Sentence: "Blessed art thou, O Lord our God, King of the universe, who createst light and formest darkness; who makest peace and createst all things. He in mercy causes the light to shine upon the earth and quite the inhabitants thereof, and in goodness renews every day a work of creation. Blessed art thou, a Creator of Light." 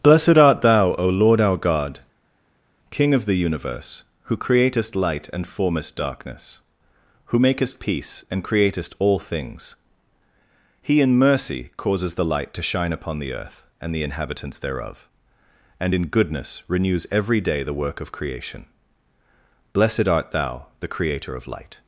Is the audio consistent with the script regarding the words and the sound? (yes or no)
no